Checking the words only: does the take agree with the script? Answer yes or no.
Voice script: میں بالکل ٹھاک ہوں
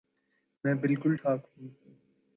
yes